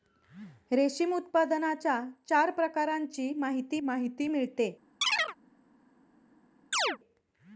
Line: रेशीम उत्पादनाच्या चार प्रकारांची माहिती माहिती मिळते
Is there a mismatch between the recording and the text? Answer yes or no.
no